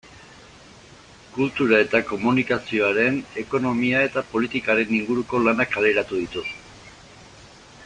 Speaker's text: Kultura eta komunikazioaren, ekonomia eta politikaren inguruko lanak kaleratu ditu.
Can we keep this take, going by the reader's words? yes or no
yes